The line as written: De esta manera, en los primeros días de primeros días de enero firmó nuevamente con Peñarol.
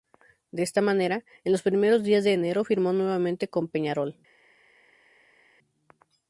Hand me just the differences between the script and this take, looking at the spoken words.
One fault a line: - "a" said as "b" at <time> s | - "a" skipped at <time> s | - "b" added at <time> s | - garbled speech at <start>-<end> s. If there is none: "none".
- "primeros días de" skipped at 2.3 s